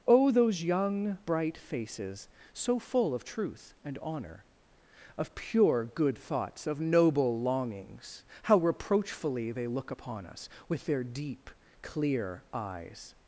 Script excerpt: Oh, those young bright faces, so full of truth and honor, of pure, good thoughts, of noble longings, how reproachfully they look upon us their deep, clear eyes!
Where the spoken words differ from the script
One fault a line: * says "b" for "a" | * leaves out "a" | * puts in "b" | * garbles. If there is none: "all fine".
* puts in "with"